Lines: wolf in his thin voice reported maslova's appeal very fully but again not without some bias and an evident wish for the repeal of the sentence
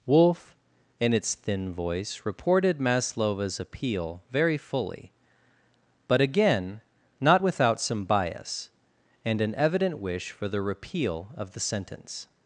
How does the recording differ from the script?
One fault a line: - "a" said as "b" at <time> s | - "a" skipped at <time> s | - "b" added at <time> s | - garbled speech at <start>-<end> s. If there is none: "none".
- "his" said as "its" at 1.1 s